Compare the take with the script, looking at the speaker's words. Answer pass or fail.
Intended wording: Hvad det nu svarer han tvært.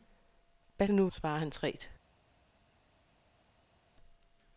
pass